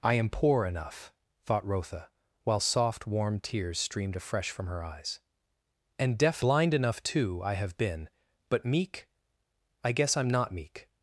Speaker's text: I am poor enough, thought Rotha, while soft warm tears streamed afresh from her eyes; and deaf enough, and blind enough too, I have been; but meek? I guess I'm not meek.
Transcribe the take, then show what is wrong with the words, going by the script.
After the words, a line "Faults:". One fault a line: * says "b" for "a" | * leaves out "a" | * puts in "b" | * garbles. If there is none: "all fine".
I am poor enough, thought Rotha, while soft warm tears streamed afresh from her eyes; and deaf blind enough too, I have been; but meek? I guess I'm not meek.
Faults:
* leaves out "enough and"